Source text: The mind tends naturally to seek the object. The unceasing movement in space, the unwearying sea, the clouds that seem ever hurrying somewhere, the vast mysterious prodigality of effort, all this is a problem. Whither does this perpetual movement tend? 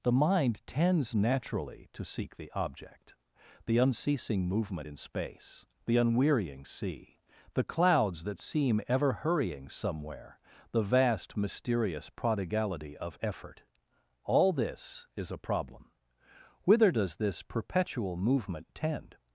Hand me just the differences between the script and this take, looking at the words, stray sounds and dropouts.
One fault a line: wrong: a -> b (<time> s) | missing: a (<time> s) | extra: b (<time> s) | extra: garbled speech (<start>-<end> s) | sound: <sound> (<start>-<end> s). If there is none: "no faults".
no faults